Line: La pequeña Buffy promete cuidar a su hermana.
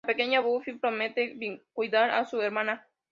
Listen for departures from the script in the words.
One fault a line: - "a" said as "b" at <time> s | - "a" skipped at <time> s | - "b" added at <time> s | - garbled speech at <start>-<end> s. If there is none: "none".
none